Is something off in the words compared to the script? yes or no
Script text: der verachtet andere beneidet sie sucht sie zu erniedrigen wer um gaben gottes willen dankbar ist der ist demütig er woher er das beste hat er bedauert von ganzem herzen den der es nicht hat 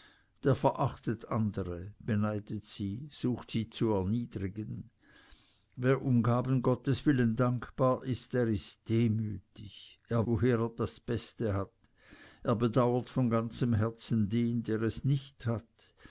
no